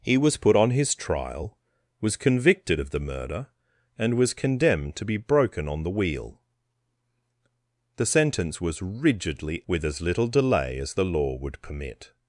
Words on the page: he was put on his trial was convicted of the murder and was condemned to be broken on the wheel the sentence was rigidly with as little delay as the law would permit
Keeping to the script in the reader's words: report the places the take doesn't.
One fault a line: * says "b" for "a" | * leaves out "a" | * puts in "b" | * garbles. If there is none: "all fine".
all fine